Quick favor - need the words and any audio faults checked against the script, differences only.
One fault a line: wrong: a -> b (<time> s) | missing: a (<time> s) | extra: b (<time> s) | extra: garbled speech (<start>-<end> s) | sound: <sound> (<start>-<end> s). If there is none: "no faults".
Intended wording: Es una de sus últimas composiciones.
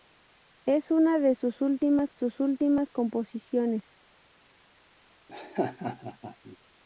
extra: sus últimas (2.1 s)
sound: laugh (5.3-6.6 s)